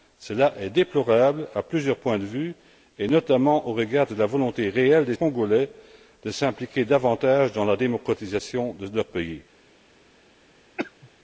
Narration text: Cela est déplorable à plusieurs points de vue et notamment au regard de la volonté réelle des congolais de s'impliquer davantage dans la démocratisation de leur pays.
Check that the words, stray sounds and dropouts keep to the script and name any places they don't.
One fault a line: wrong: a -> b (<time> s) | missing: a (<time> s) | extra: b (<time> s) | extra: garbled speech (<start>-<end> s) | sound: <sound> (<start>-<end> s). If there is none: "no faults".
sound: cough (10.8-11.1 s)